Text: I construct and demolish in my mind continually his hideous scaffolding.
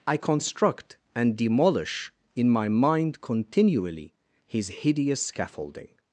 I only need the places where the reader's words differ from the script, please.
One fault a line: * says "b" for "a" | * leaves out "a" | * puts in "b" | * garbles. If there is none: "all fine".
all fine